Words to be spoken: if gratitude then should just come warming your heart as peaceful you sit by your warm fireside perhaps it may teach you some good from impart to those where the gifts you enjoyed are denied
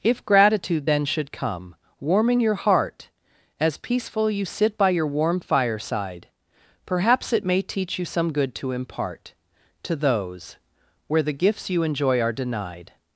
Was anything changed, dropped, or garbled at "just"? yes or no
yes